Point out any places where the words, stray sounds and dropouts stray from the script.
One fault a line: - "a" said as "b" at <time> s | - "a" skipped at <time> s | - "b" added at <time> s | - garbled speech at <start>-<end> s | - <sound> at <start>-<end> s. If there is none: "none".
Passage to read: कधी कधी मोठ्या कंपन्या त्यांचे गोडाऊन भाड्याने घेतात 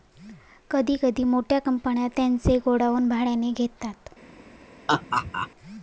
- laugh at 4.9-5.5 s